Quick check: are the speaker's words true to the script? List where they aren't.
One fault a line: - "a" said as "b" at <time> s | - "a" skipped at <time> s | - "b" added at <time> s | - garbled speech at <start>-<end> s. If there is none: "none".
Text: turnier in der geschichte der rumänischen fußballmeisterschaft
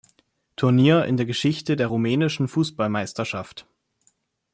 none